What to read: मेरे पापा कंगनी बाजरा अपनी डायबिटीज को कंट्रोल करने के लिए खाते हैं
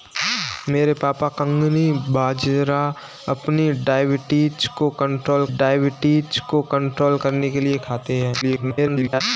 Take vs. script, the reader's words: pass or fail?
fail